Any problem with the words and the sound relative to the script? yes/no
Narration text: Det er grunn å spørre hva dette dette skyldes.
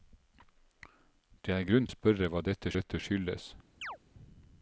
yes